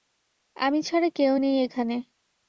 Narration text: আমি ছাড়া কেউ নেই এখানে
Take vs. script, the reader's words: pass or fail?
pass